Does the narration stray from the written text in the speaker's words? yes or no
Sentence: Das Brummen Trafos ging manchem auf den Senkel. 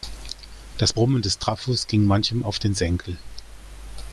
yes